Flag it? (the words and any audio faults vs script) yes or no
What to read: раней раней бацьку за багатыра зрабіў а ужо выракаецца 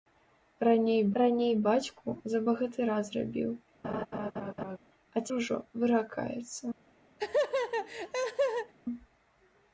yes